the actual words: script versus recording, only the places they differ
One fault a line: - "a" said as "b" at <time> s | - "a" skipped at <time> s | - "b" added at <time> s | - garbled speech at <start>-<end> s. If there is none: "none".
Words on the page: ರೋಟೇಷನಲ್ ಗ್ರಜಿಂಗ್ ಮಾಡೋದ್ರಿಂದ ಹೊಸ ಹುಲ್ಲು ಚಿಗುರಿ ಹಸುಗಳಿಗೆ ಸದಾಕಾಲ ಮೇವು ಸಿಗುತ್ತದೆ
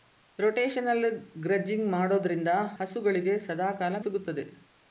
- "ಹೊಸ ಹುಲ್ಲು ಚಿಗುರಿ" skipped at 2.5 s
- "ಮೇವು" skipped at 4.0 s